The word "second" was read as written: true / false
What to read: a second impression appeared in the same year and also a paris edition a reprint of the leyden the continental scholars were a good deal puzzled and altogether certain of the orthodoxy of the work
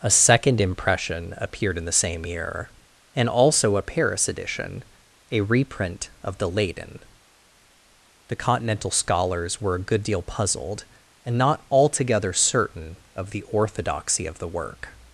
true